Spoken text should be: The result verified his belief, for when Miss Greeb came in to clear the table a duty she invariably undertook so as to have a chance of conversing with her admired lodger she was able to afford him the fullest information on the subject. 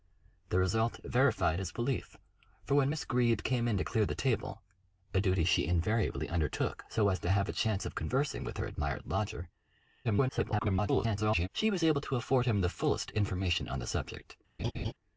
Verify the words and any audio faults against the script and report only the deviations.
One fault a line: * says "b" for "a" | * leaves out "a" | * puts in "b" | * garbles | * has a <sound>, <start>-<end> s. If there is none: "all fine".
* garbles
* has a laugh, 14.6-14.9 s